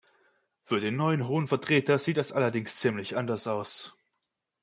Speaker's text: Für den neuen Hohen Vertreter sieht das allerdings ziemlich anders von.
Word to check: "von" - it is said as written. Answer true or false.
false